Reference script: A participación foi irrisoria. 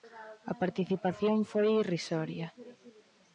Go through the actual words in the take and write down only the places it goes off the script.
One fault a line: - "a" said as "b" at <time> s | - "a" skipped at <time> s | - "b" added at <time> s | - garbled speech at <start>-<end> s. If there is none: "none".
none